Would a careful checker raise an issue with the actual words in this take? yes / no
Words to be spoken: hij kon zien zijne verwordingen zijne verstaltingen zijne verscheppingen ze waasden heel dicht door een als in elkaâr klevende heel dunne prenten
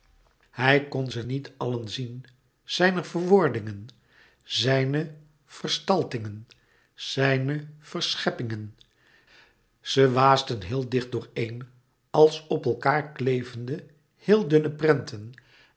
yes